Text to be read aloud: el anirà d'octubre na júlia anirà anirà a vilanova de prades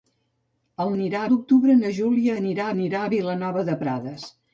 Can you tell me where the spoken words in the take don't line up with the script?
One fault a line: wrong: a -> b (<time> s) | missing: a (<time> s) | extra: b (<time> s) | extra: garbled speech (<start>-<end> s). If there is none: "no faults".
no faults